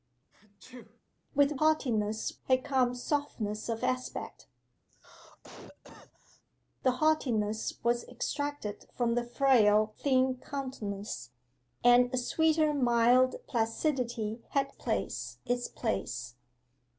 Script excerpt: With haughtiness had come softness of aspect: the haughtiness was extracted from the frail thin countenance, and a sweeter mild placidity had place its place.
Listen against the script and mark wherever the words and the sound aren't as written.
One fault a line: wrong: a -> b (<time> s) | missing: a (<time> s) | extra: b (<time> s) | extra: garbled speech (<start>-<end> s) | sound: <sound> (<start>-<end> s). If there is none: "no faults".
sound: sneeze (0.3-1.0 s)
sound: cough (4.9-6.4 s)